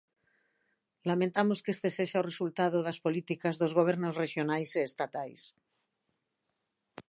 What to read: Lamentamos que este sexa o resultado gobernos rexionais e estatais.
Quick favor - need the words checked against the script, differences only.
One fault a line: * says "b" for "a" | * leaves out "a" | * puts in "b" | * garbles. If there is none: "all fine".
* puts in "das políticas dos"